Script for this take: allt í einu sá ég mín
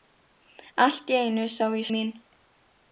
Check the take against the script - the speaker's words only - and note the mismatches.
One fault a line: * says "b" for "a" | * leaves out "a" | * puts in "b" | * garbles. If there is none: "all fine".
all fine